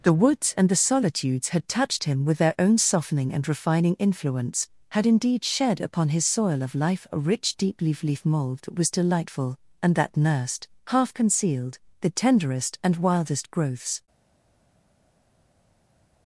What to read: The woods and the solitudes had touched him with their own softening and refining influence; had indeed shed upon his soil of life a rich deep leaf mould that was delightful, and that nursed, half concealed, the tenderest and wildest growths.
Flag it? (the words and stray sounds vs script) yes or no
yes